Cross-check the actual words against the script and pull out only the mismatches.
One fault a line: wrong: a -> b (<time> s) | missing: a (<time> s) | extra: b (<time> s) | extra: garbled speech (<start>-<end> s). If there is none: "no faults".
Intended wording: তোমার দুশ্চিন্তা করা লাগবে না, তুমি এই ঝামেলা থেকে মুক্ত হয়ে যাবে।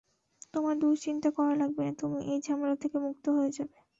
no faults